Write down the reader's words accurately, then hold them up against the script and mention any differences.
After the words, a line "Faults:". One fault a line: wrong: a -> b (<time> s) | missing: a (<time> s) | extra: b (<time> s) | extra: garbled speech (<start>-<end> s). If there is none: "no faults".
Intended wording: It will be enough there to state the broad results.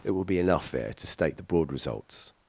It will be enough there to state the broad results.
Faults:
no faults